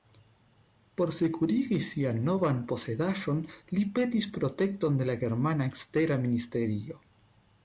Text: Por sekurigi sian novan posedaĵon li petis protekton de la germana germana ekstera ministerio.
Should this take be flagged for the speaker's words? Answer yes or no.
yes